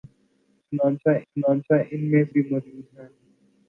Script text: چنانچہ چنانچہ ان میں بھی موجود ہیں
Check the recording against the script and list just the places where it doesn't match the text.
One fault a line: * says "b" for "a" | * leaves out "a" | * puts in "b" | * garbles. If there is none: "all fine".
all fine